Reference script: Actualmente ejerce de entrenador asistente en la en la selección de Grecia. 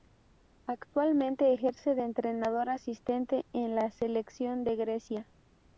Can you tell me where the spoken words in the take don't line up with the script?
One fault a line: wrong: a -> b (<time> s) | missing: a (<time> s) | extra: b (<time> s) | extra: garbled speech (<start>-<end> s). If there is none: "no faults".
missing: en la (3.9 s)